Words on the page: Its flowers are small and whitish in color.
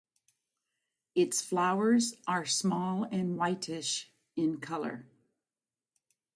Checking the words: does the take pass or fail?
pass